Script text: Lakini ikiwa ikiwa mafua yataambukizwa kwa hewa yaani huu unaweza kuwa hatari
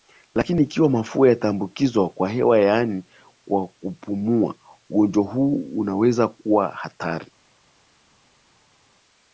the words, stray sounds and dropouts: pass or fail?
fail